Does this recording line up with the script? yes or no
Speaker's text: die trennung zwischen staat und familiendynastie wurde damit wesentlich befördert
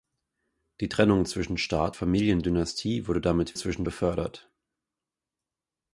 no